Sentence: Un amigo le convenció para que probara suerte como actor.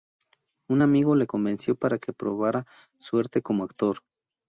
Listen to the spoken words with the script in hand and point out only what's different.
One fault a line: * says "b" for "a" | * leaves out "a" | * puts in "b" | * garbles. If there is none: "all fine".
all fine